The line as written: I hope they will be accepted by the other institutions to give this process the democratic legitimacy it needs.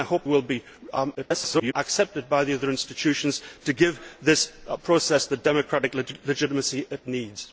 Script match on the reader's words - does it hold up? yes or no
no